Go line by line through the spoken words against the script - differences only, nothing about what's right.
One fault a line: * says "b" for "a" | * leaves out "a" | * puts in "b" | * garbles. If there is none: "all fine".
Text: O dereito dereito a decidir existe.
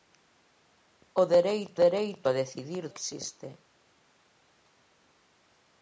all fine